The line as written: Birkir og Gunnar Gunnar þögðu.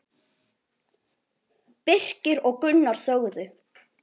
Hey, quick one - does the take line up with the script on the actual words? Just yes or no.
no